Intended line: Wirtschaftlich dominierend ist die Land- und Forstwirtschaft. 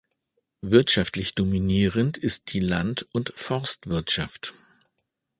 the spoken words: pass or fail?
pass